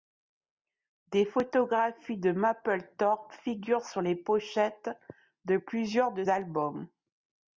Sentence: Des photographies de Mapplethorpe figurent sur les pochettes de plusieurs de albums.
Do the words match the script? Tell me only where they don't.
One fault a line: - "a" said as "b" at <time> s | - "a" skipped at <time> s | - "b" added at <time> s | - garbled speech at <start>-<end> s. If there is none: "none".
none